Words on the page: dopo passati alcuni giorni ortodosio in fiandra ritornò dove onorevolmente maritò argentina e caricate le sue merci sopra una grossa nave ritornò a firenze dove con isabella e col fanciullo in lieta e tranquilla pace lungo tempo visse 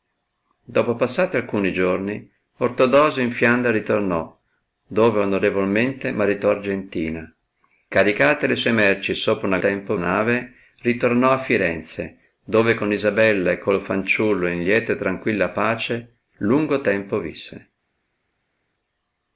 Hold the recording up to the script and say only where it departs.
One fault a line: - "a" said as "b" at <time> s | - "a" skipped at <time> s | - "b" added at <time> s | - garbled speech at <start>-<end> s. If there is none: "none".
- "e" skipped at 7.3 s
- "grossa" said as "tempo" at 9.6 s